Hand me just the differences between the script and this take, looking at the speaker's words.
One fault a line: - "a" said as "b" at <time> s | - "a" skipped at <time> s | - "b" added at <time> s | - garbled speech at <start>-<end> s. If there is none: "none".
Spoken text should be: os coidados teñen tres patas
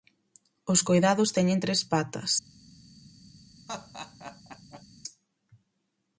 none